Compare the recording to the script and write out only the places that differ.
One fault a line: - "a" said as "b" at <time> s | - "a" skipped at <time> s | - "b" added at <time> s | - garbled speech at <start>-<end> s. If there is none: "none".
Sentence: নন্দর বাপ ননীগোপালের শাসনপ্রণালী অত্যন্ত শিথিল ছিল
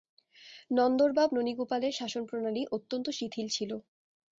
none